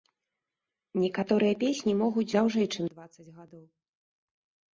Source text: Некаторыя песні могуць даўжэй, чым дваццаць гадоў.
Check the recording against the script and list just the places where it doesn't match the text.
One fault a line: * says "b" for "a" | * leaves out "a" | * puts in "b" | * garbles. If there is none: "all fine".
all fine